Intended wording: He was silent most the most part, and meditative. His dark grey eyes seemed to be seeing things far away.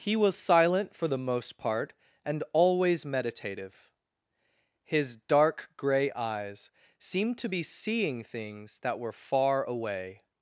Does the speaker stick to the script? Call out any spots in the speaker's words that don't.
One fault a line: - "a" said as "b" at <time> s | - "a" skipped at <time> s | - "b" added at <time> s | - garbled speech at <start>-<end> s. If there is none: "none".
- "most" said as "for" at 0.9 s
- "always" added at 2.5 s
- "that were" added at 8.8 s